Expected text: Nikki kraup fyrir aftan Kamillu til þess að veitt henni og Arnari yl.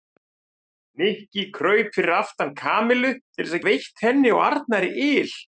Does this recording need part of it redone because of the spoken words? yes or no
no